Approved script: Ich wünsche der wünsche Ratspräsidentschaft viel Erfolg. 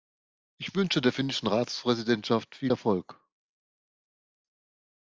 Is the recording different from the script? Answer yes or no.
yes